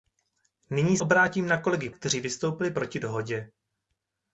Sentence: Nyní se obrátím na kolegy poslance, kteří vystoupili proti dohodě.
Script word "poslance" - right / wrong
wrong